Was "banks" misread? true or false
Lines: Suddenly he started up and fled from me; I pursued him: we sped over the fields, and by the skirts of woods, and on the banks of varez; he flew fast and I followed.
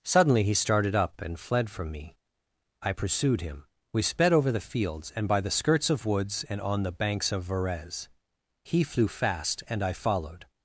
false